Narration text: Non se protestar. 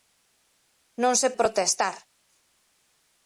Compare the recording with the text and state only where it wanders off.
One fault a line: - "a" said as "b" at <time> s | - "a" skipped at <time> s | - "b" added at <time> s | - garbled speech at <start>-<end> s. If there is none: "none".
none